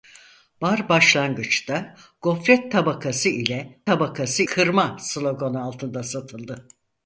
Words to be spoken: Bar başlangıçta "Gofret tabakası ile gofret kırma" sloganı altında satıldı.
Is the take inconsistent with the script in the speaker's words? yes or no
yes